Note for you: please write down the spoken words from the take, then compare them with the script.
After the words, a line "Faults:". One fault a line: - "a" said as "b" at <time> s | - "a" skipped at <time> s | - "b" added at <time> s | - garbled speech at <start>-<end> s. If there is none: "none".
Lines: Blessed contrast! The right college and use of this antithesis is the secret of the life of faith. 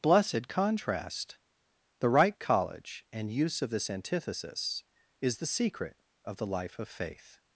Blessed contrast! The right college and use of this antithesis is the secret of the life of faith.
Faults:
none